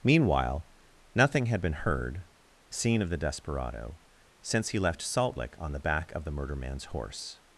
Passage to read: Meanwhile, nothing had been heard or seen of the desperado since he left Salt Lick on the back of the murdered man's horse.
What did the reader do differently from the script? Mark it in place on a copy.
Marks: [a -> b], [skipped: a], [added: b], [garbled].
Meanwhile, nothing had been heard [skipped: or] seen of the desperado since he left Salt Lick on the back of the [murdered -> murder] man's horse.